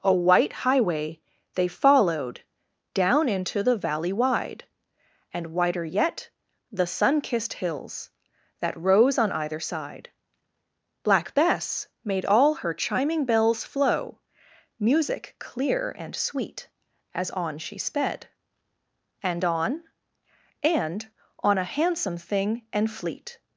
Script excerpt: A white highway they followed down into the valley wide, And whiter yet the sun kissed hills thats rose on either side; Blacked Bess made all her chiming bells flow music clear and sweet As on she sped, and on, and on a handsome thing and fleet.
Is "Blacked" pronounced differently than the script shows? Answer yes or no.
yes